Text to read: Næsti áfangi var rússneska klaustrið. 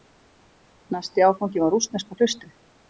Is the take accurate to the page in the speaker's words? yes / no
yes